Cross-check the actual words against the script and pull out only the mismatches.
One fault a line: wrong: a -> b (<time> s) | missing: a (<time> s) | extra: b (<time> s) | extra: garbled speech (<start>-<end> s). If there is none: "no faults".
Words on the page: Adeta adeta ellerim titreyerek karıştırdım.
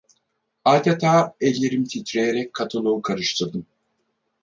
missing: adeta (1.4 s)
extra: katalogu (2.5 s)